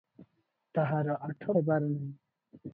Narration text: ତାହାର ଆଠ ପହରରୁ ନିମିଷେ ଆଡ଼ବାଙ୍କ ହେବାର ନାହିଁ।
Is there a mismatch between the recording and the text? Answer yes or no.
yes